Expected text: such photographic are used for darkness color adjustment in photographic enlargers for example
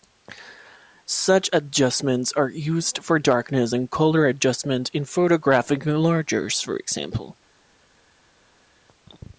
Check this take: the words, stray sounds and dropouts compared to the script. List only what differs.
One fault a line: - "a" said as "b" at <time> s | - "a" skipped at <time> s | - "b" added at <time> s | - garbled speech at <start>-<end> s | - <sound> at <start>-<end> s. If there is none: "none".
- "photographic" said as "adjustments" at 1.5 s
- "and" added at 3.7 s